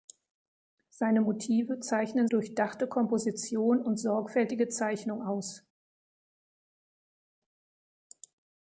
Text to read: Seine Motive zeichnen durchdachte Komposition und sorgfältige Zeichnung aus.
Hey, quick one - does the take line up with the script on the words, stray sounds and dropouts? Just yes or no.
yes